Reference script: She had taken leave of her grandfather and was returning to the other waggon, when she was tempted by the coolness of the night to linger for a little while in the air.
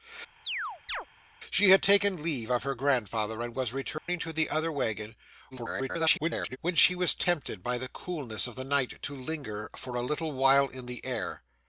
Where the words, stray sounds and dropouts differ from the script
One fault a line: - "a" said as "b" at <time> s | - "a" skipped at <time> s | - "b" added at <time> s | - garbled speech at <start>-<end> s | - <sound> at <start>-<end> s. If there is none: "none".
- chirp at 0.5-1.1 s
- dropout at 4.0-4.1 s
- garbled speech at 5.5-6.6 s